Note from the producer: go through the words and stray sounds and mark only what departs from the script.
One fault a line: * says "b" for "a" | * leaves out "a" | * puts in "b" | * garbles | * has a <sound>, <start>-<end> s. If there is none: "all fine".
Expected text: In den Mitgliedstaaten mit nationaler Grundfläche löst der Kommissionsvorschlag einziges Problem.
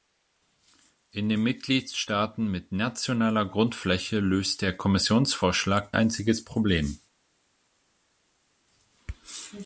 all fine